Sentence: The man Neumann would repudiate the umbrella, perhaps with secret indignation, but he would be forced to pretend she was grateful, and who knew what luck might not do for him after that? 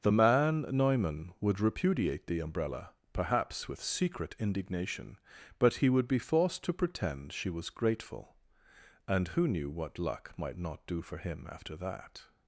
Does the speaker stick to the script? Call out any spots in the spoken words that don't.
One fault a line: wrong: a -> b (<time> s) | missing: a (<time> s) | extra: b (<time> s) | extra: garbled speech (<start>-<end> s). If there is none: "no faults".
no faults